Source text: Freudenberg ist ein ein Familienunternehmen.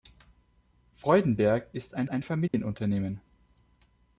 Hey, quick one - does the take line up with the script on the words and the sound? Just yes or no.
no